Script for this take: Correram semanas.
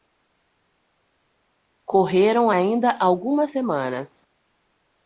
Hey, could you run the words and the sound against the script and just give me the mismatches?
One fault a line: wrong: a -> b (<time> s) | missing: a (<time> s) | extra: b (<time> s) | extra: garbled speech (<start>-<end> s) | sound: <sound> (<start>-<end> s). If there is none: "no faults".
extra: ainda algumas (2.5 s)